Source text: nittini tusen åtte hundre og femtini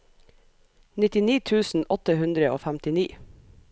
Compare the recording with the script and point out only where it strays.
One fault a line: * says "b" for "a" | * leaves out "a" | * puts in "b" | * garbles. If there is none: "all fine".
all fine